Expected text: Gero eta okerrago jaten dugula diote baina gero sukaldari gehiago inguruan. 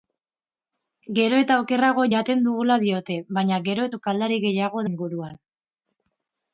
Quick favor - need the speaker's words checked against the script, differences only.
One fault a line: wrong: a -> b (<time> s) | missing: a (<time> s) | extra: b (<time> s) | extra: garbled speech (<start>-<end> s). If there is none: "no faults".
no faults